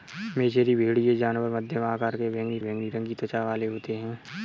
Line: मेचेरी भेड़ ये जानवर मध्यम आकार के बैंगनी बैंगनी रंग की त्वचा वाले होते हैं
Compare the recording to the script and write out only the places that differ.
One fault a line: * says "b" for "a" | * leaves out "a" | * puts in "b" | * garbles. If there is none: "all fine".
all fine